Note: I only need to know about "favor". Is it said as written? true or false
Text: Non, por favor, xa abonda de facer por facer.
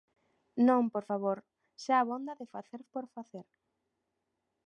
true